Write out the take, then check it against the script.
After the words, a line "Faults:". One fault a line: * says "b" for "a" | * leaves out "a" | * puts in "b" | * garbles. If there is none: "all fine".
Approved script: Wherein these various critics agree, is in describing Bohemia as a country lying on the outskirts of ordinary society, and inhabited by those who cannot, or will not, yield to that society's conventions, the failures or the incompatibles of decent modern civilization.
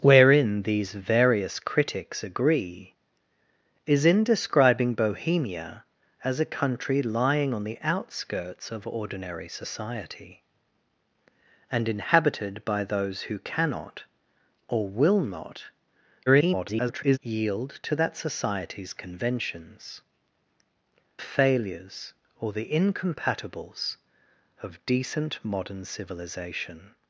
Wherein these various critics agree, is in describing Bohemia as a country lying on the outskirts of ordinary society, and inhabited by those who cannot, or will not, [garbled] yield to that society's conventions, failures or the incompatibles of decent modern civilization.
Faults:
* garbles
* leaves out "the"